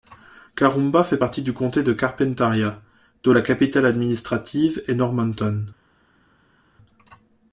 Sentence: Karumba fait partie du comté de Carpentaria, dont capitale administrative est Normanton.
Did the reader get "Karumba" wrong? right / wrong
right